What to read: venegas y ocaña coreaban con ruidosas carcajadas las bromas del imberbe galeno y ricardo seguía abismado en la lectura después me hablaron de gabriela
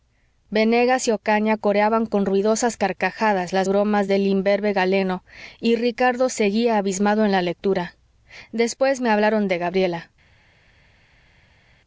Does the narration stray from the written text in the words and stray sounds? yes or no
no